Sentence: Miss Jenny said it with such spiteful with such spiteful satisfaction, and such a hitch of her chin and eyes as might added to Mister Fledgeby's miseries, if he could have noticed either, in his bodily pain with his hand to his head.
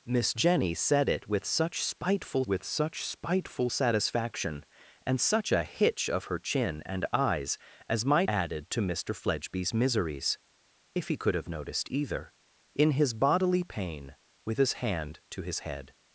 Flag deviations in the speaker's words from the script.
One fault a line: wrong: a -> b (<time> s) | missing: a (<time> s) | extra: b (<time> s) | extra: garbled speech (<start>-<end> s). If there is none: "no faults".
no faults